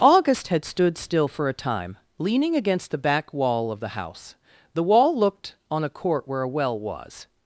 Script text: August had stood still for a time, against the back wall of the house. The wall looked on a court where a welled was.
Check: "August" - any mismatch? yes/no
no